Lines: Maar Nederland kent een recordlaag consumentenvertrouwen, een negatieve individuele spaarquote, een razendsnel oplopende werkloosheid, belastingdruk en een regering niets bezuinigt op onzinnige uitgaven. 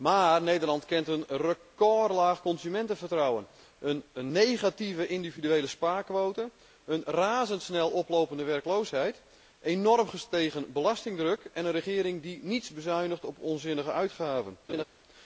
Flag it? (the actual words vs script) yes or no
yes